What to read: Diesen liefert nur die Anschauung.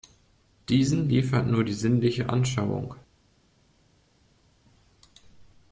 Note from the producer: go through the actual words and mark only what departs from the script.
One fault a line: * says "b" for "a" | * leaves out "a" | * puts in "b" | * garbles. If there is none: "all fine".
* puts in "sinnliche"